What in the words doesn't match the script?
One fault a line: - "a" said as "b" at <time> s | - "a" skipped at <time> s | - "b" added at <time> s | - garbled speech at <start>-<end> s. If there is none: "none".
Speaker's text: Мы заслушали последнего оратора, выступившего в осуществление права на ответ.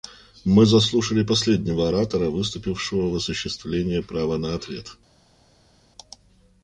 none